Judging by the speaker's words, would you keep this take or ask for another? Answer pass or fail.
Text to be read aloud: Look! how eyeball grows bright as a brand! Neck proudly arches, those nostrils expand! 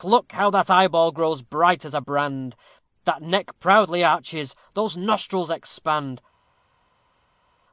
fail